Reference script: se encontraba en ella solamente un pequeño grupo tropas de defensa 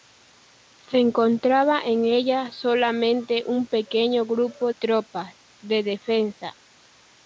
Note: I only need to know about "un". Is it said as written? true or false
true